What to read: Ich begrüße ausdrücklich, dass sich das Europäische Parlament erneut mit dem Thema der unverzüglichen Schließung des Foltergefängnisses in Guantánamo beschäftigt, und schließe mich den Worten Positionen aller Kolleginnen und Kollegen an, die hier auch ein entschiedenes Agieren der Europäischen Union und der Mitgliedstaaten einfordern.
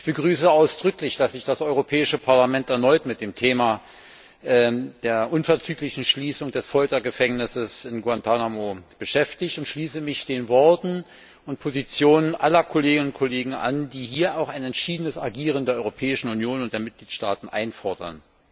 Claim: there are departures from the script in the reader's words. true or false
true